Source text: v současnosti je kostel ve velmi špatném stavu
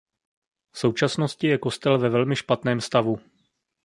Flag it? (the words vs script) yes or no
no